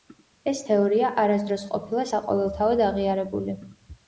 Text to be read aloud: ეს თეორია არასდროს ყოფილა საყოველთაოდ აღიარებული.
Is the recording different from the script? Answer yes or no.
no